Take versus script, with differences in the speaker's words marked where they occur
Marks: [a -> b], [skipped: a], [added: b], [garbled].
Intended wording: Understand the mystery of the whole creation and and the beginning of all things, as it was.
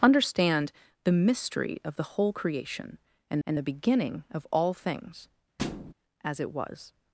Understand the mystery of the whole creation and and the beginning of all things, as it was.